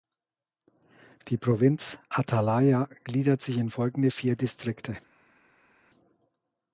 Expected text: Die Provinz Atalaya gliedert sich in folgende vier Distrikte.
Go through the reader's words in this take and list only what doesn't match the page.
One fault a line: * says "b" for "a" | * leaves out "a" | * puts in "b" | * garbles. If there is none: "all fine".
all fine